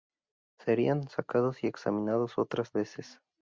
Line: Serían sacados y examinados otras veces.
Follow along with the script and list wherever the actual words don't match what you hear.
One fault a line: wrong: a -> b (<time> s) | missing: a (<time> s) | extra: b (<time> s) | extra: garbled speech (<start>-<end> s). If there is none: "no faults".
no faults